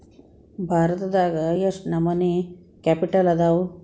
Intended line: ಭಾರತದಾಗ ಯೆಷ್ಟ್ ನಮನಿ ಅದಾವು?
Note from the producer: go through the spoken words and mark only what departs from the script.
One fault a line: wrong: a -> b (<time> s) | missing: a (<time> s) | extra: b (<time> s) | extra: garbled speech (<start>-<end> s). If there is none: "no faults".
extra: ಕ್ಯಾಪಿಟಲ್ (2.8 s)